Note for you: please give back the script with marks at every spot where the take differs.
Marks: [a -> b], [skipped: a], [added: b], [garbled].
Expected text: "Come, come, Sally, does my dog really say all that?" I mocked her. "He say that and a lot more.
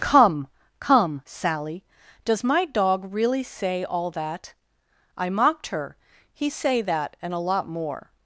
"Come, come, Sally, does my dog really say all that?" I mocked her. "He say that and a lot more.